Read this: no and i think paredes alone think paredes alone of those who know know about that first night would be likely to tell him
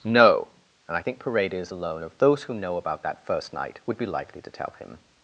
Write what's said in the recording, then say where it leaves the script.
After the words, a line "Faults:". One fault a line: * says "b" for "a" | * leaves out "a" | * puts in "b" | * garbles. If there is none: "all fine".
no and i think paredes alone of those who know about that first night would be likely to tell him
Faults:
* leaves out "think paredes alone"
* leaves out "know"